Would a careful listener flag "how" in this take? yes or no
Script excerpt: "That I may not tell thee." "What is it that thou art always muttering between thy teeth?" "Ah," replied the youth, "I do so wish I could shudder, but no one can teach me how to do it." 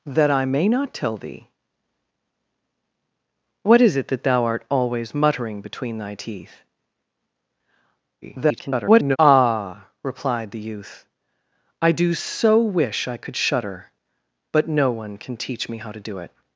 no